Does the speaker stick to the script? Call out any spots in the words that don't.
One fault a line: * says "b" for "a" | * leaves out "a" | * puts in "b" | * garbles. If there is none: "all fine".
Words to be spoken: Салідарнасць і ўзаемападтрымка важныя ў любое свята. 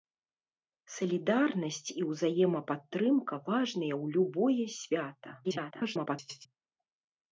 * garbles